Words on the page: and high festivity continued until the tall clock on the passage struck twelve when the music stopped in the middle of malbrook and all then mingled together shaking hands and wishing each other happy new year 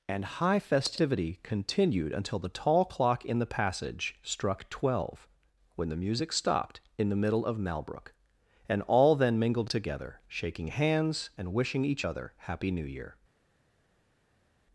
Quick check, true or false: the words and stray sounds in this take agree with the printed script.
false